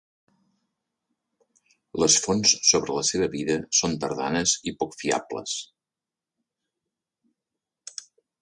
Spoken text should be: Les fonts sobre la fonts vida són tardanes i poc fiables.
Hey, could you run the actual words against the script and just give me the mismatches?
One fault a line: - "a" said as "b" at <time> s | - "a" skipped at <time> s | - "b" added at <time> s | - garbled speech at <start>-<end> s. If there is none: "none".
- "fonts" said as "seva" at 3.1 s